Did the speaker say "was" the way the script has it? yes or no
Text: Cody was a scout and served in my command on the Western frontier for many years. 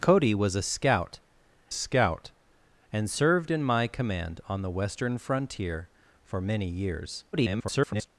yes